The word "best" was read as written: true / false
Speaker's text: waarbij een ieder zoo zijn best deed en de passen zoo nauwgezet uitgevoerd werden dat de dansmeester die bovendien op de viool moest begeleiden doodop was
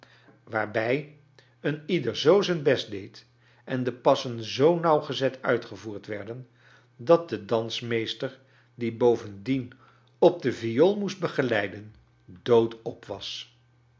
true